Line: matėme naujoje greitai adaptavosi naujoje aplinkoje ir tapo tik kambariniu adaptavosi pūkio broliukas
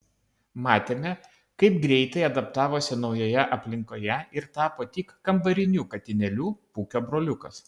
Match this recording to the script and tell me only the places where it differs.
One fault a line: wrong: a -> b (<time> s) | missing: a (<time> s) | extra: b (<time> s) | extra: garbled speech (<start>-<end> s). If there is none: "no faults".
wrong: naujoje -> kaip (1.6 s)
wrong: adaptavosi -> katinėliu (6.0 s)